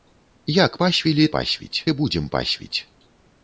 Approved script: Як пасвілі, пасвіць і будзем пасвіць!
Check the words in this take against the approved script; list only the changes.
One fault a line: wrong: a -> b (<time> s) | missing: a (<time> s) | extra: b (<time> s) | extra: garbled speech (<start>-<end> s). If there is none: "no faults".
no faults